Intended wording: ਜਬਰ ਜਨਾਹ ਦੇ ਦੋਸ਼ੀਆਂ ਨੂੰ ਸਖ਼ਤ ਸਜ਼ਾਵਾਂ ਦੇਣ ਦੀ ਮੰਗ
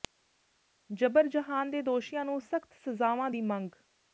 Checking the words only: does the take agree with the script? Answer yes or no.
no